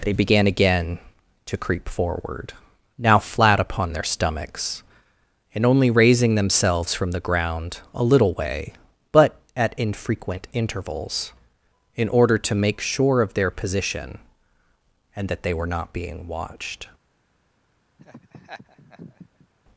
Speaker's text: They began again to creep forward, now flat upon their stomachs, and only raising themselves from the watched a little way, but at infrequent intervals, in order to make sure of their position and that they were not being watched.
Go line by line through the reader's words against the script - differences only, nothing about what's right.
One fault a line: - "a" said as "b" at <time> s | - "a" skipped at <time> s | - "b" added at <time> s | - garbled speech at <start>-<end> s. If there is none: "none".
- "watched" said as "ground" at 7.2 s